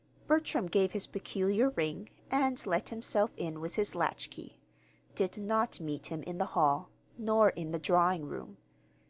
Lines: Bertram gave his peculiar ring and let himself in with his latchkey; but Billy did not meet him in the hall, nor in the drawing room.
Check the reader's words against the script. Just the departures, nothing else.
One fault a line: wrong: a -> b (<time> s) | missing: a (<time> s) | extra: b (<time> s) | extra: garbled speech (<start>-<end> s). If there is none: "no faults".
missing: but Billy (4.6 s)